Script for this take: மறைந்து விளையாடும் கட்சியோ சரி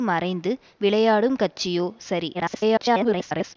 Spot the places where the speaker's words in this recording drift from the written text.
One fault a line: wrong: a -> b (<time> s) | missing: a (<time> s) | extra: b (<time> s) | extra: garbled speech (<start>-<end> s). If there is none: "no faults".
extra: garbled speech (2.3-3.6 s)